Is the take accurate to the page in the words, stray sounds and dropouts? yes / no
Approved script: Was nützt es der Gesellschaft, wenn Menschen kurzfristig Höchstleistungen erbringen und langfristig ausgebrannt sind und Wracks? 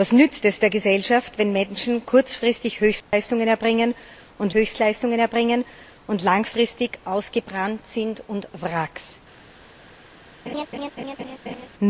no